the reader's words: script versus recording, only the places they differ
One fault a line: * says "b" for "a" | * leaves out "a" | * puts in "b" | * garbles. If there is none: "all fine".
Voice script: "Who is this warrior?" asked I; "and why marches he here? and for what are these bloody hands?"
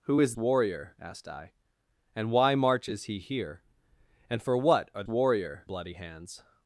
* leaves out "this"
* says "warrior" for "these"